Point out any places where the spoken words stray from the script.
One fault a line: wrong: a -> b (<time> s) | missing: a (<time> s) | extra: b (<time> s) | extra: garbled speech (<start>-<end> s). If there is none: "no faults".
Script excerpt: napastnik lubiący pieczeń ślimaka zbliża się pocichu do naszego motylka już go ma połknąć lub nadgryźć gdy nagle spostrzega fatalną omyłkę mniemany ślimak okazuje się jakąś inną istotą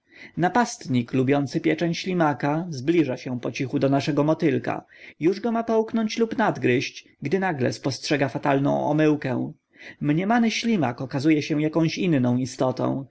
no faults